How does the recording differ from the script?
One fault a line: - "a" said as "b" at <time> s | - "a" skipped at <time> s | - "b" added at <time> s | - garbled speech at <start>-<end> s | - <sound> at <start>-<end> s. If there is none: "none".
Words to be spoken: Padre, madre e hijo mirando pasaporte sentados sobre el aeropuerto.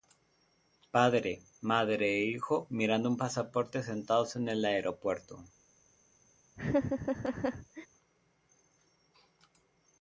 - "un" added at 3.1 s
- "sobre" said as "en" at 4.3 s
- laugh at 6.6-7.9 s